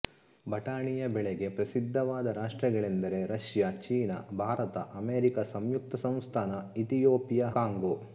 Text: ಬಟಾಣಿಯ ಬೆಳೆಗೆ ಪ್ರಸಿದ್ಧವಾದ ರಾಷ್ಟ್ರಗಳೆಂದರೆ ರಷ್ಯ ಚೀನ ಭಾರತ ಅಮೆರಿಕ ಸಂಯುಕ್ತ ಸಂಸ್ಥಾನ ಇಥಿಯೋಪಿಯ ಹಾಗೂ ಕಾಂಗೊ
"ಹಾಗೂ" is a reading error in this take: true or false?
true